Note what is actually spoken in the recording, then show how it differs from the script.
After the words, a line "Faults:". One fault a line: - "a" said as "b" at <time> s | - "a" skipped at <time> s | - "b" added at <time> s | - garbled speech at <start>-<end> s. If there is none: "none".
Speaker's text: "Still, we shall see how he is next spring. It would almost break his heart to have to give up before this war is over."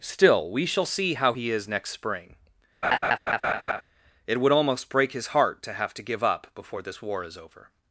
"Still, we shall see how he is next spring. It would almost break his heart to have to give up before this war is over."
Faults:
none